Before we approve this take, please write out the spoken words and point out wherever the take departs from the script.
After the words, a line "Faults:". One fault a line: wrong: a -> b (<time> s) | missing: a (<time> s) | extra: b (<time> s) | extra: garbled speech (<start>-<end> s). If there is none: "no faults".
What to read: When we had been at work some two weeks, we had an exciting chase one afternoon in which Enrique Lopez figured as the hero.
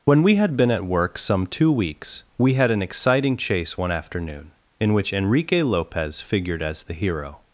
When we had been at work some two weeks, we had an exciting chase one afternoon in which Enrique Lopez figured as the hero.
Faults:
no faults